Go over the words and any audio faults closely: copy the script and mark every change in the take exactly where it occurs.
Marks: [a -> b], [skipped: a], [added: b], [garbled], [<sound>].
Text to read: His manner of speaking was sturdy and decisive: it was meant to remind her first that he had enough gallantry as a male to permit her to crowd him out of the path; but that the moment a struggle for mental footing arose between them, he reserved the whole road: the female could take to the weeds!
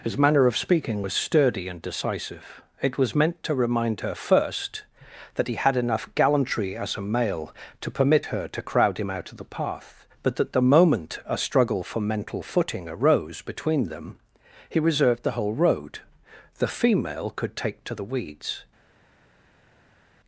His manner of speaking was sturdy and decisive: it was meant to remind her first that he had enough gallantry as a male to permit her to crowd him out of the path; but that the moment a struggle for mental footing arose between them, he reserved the whole road: the female could take to the weeds!